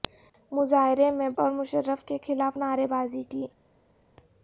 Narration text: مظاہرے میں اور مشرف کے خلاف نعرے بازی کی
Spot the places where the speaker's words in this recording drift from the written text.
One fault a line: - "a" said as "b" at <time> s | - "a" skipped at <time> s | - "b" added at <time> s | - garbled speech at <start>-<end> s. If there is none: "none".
none